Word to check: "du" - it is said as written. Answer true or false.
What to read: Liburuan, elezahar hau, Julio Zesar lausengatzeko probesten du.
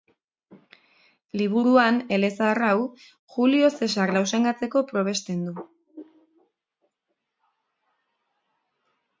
true